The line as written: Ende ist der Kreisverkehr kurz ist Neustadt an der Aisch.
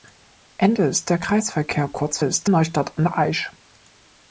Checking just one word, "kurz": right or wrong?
right